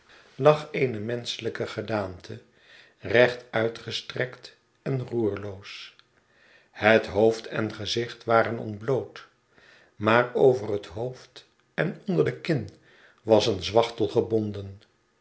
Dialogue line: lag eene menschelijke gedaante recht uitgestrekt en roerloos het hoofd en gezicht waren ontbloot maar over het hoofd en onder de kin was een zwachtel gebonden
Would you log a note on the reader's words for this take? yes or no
no